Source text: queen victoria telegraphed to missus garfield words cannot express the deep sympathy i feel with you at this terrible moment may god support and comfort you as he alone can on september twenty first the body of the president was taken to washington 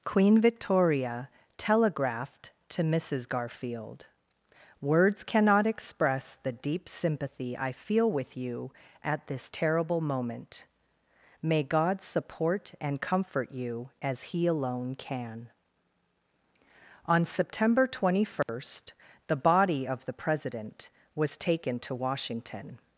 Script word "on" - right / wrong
right